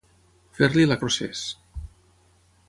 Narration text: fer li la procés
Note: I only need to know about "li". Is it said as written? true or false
true